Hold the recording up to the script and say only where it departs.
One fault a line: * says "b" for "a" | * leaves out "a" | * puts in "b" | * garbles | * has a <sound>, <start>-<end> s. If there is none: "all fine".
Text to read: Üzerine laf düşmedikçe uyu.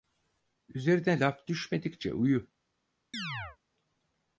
* has a chirp, 3.1-3.6 s